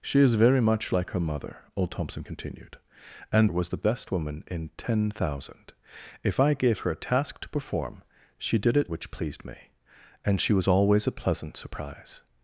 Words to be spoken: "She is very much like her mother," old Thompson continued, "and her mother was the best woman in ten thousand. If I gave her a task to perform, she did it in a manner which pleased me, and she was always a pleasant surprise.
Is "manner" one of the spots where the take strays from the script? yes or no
yes